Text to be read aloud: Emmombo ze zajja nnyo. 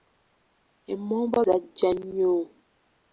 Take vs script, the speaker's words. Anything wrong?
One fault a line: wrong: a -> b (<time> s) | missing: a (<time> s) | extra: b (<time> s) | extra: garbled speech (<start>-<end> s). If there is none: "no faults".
missing: ze (1.4 s)